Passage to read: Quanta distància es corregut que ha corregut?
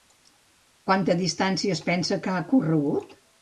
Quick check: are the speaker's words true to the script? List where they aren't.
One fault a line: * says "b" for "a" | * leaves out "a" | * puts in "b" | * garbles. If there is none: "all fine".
* says "pensa" for "corregut"